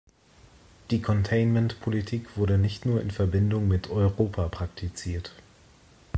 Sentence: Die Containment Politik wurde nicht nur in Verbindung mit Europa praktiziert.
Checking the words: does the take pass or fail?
pass